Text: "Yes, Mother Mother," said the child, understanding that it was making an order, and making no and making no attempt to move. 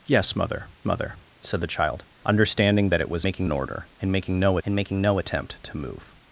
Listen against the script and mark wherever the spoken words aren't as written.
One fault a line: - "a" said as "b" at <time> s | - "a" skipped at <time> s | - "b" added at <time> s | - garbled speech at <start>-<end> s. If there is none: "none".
none